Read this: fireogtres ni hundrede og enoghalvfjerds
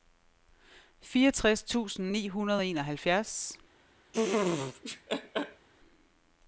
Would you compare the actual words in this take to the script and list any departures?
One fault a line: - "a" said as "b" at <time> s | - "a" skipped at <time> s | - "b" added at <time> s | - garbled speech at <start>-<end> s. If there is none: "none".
- "tusind" added at 1.6 s